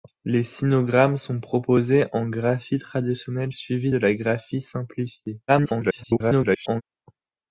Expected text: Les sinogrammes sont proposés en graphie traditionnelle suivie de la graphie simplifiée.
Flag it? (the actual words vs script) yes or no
yes